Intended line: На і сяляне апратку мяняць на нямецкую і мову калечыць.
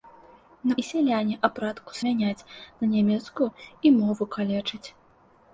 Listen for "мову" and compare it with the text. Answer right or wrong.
right